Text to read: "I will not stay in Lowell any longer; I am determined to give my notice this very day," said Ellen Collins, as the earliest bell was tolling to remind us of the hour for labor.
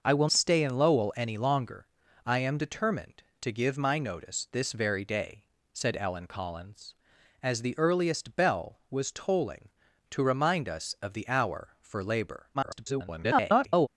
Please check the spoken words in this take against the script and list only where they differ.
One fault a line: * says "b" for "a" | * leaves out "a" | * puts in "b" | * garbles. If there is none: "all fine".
* leaves out "not"
* garbles